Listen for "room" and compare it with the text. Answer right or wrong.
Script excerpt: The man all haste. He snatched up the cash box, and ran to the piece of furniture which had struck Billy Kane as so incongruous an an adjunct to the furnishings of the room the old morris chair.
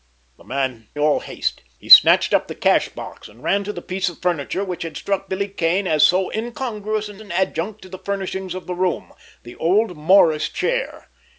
right